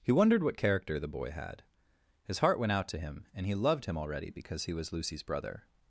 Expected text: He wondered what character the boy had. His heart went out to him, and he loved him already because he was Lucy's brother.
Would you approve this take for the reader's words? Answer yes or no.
yes